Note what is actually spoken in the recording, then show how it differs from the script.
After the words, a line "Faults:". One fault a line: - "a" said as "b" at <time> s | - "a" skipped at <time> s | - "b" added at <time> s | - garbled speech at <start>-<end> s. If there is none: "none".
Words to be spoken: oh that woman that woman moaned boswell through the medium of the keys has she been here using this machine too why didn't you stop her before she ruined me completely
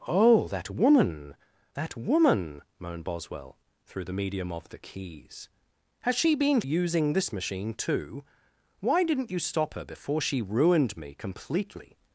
oh that woman that woman moaned boswell through the medium of the keys has she been using this machine too why didn't you stop her before she ruined me completely
Faults:
- "here" skipped at 6.6 s